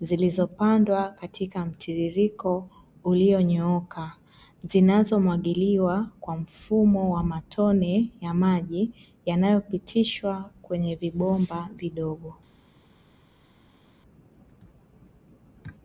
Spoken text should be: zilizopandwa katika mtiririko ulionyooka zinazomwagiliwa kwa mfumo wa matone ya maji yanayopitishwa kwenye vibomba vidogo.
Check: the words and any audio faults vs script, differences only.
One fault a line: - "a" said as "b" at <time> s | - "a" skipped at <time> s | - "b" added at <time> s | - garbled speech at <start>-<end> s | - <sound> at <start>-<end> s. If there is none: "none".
none